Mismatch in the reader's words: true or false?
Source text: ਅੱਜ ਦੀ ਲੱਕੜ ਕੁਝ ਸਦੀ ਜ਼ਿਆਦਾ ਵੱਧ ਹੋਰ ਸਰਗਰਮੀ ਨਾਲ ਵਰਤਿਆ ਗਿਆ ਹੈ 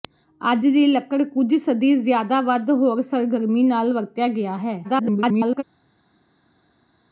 true